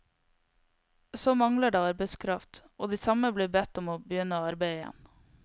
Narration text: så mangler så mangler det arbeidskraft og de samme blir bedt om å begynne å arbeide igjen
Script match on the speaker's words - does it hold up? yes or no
no